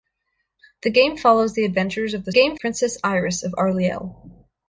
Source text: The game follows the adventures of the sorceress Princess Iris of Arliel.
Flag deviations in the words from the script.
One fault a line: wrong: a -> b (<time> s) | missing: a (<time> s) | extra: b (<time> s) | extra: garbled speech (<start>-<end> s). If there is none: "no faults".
wrong: sorceress -> game (2.3 s)